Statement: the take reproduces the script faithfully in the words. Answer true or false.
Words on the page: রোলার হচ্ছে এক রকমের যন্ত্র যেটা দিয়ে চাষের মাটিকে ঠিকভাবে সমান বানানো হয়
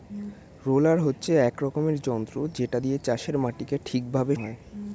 false